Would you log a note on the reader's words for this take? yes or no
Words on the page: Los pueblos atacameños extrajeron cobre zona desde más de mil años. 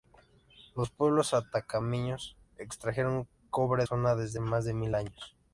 no